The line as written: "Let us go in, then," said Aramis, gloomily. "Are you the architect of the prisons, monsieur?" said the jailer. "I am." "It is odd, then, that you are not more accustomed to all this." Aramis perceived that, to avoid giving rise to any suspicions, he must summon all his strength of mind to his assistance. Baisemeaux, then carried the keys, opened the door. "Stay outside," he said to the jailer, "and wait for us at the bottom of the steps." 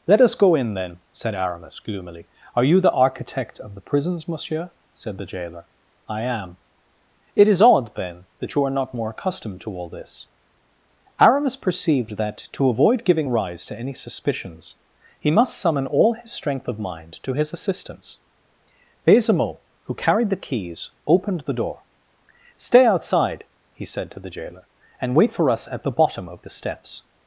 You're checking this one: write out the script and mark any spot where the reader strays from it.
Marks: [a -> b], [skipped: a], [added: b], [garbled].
"Let us go in, then," said Aramis, gloomily. "Are you the architect of the prisons, monsieur?" said the jailer. "I am." "It is odd, then, that you are not more accustomed to all this." Aramis perceived that, to avoid giving rise to any suspicions, he must summon all his strength of mind to his assistance. Baisemeaux, [then -> who] carried the keys, opened the door. "Stay outside," he said to the jailer, "and wait for us at the bottom of the steps."